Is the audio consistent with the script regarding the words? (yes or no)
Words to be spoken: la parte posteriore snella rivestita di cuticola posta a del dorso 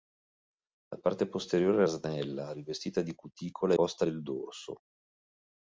yes